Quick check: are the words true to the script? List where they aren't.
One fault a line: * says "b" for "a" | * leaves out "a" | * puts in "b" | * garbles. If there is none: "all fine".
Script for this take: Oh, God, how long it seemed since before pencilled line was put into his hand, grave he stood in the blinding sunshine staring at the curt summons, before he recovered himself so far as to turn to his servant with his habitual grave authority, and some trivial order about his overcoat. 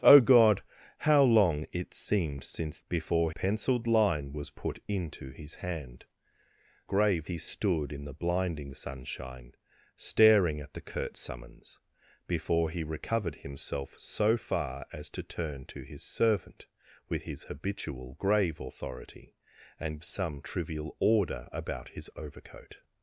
all fine